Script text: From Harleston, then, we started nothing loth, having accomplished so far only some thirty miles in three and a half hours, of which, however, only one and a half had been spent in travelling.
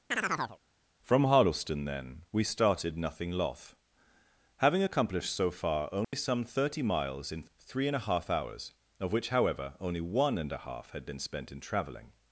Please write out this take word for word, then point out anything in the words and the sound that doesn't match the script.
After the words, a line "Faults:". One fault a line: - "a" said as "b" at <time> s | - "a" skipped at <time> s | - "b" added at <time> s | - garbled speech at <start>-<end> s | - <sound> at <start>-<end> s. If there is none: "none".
From Harleston, then, we started nothing loth, having accomplished so far only some thirty miles in three and a half hours, of which, however, only one and a half had been spent in travelling.
Faults:
- chirp at 0.1-0.6 s
- dropout at 6.0-6.1 s